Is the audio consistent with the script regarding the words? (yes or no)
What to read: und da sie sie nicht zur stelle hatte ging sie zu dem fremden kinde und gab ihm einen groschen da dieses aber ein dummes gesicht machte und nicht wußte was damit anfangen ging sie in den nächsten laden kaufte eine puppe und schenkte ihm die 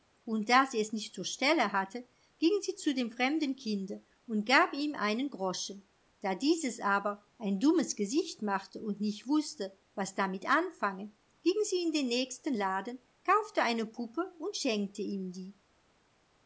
no